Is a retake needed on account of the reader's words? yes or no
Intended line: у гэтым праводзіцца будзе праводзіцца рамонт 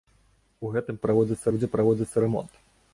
no